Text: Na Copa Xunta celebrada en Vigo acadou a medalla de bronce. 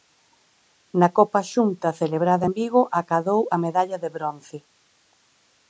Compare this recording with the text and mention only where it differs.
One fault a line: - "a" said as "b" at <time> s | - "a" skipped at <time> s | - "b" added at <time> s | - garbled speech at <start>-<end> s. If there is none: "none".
none